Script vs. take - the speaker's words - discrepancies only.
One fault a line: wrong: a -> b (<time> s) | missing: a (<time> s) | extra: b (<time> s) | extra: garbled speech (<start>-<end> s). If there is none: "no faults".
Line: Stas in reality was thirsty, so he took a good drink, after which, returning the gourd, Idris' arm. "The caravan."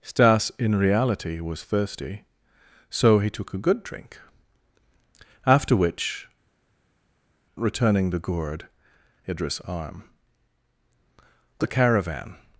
no faults